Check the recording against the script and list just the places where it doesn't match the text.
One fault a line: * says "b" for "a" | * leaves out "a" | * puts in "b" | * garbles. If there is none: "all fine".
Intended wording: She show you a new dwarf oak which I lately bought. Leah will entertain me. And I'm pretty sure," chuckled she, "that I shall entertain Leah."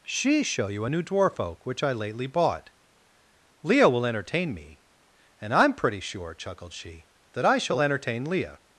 all fine